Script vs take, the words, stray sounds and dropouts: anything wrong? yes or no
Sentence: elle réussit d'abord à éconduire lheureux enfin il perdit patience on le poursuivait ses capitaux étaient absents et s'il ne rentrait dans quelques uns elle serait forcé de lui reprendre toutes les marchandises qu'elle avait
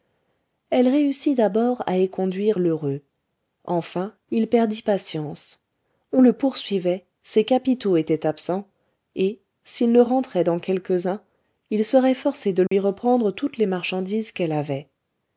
yes